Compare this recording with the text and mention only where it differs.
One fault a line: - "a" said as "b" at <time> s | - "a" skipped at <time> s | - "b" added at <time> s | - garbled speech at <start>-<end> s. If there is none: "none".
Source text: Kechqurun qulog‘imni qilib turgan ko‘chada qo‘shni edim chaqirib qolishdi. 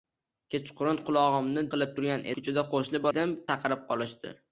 none